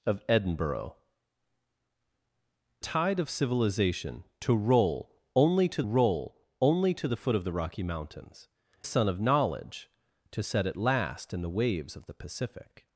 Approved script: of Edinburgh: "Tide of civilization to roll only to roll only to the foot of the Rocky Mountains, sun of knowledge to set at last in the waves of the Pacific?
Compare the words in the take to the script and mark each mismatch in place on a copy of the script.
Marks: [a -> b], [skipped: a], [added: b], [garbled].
of Edinburgh: "Tide of civilization to roll only to roll only to the foot of the Rocky Mountains, sun of knowledge to set at last in the waves of the Pacific?